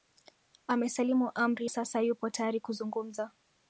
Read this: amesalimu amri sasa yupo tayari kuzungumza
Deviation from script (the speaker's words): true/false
false